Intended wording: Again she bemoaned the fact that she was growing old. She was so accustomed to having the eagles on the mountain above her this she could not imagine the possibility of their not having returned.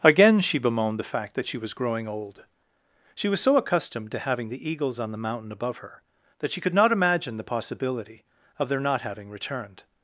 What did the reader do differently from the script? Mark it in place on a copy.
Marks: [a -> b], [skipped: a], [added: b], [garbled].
Again she bemoaned the fact that she was growing old. She was so accustomed to having the eagles on the mountain above her [this -> that] she could not imagine the possibility of their not having returned.